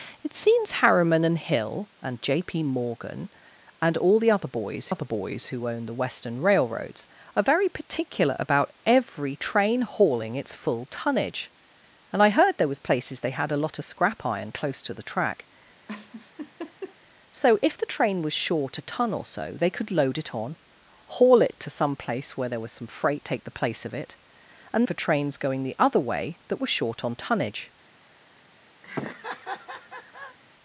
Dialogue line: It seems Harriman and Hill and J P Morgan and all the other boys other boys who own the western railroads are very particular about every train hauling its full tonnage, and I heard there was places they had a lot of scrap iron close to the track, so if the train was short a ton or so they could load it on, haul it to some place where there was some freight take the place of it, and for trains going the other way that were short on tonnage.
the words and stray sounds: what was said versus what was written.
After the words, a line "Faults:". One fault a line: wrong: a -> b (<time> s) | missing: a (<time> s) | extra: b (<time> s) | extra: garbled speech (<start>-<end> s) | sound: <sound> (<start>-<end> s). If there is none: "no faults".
It seems Harriman and Hill and J P Morgan and all the other boys other boys who own the western railroads are very particular about every train hauling its full tonnage, and I heard there was places they had a lot of scrap iron close to the track, so if the train was short a ton or so they could load it on, haul it to some place where there was some freight take the place of it, and for trains going the other way that were short on tonnage.
Faults:
sound: laugh (15.9-17.0 s)
sound: laugh (28.8-30.4 s)